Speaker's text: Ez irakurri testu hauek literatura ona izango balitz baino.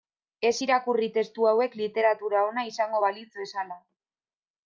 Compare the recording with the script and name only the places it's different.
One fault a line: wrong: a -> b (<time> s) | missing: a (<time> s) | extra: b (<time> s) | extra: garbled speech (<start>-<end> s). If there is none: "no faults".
wrong: baino -> bezala (3.4 s)